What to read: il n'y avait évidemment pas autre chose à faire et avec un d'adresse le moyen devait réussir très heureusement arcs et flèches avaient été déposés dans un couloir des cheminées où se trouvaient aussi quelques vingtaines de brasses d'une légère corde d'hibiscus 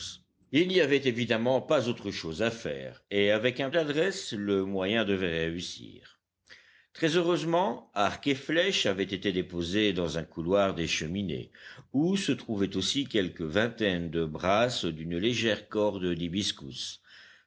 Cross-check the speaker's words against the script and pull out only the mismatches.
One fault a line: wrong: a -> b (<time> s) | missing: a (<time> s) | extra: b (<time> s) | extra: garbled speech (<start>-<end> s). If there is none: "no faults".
no faults